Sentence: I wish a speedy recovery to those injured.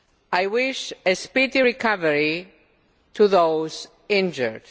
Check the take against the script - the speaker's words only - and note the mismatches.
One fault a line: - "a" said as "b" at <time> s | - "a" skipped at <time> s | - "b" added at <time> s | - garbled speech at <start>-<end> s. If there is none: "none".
none